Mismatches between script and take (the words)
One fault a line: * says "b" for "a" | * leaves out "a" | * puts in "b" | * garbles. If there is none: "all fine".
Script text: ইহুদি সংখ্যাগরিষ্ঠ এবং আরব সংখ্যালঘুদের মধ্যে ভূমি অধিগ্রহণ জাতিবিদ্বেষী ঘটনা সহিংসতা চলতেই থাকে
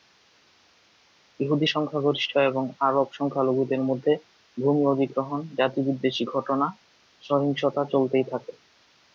all fine